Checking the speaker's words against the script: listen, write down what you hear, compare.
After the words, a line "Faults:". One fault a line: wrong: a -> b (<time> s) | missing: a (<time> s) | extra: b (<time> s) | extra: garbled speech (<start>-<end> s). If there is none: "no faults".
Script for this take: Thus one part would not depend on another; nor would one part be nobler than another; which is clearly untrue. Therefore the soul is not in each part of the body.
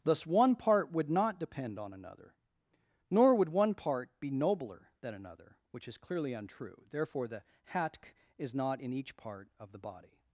Thus one part would not depend on another; nor would one part be nobler than another; which is clearly untrue. Therefore the hatk is not in each part of the body.
Faults:
wrong: soul -> hatk (7.7 s)